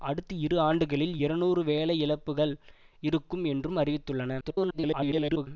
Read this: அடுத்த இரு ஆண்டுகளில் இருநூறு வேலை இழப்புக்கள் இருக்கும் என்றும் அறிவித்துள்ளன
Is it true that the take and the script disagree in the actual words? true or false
true